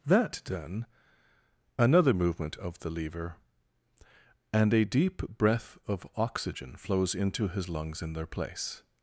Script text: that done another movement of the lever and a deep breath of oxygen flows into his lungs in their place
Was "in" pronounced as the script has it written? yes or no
yes